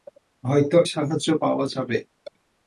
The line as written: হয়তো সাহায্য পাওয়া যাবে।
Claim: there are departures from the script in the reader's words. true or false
false